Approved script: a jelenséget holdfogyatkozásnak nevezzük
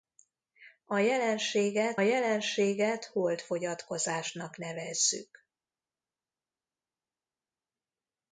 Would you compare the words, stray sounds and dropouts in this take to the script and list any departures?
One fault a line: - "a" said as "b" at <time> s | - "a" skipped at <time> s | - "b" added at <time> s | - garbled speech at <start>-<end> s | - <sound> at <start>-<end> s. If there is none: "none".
- "jelenséget" added at 2.0 s